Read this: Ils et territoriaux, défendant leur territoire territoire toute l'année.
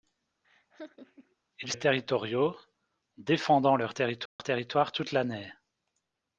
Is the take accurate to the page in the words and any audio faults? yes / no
no